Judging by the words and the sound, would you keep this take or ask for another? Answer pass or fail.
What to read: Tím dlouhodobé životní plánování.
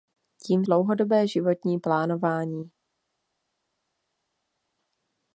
pass